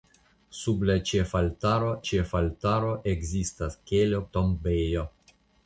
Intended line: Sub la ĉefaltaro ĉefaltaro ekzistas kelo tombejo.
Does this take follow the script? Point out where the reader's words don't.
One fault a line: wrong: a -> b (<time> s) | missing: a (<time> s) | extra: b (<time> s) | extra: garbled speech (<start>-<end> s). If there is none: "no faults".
no faults